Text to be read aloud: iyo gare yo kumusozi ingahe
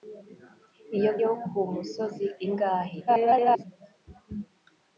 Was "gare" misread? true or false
true